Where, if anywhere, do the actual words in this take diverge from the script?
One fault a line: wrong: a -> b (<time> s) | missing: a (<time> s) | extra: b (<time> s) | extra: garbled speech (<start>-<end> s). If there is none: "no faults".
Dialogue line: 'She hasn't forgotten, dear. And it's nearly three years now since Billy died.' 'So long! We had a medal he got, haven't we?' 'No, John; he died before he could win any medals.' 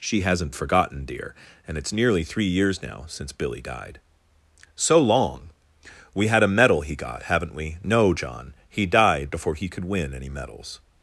no faults